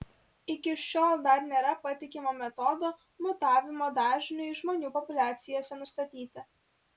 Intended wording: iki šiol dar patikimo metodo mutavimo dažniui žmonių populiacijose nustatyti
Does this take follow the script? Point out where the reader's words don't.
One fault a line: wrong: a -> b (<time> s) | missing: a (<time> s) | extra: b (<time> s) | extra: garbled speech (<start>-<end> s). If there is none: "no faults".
extra: nėra (1.5 s)